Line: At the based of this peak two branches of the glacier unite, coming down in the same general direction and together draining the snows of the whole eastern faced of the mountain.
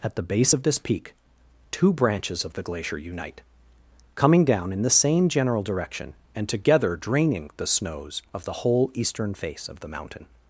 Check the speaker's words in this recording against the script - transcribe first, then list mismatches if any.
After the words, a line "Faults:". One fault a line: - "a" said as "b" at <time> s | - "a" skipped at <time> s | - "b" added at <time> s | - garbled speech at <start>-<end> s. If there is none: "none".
At the base of this peak two branches of the glacier unite, coming down in the same general direction and together draining the snows of the whole eastern face of the mountain.
Faults:
- "based" said as "base" at 0.2 s
- "faced" said as "face" at 9.3 s